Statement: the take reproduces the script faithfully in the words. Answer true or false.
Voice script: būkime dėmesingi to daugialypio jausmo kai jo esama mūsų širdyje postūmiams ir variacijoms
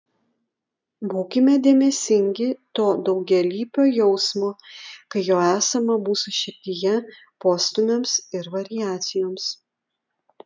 true